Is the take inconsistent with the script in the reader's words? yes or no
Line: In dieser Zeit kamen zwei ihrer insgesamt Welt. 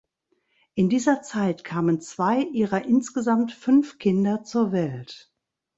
yes